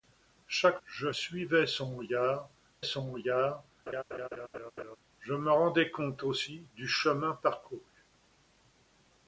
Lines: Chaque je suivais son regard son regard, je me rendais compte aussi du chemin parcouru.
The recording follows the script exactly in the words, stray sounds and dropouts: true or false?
false